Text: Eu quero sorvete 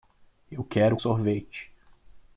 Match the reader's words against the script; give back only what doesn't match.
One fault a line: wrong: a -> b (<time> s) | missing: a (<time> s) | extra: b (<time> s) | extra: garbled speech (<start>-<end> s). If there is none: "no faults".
no faults